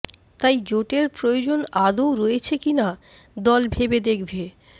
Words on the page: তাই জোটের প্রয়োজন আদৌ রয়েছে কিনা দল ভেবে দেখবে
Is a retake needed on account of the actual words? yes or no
no